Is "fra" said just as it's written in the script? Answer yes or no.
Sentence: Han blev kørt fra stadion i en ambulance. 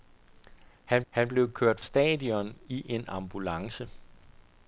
no